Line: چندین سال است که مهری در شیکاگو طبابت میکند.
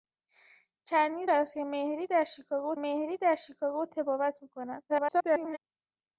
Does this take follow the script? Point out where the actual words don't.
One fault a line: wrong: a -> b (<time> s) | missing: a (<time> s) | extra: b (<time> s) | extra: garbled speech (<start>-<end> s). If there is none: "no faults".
missing: سال (1.2 s)
extra: مهری در شیکاگو (2.7 s)
extra: garbled speech (4.9-5.6 s)